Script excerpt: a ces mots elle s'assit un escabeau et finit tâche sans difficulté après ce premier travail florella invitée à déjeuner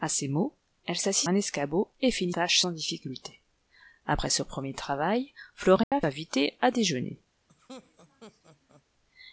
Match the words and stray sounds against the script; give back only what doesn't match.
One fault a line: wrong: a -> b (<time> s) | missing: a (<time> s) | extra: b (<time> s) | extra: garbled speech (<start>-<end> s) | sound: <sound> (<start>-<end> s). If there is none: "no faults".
sound: dropout (5.8-5.9 s)
sound: laugh (7.5-8.8 s)